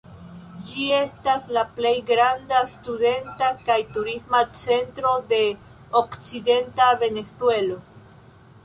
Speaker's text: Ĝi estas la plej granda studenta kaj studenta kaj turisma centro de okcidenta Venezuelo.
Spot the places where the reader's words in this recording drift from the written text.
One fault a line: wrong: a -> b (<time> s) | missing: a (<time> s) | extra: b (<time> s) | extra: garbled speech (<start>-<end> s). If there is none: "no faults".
missing: studenta kaj (3.8 s)